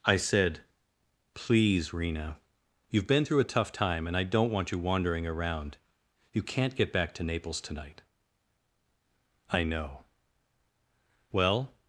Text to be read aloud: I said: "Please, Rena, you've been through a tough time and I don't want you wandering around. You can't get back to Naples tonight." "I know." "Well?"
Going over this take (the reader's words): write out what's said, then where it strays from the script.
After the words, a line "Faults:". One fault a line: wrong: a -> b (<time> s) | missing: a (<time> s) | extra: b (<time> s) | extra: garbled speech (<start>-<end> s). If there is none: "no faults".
I said: "Please, Rena, you've been through a tough time and I don't want you wandering around. You can't get back to Naples tonight." "I know." "Well?"
Faults:
no faults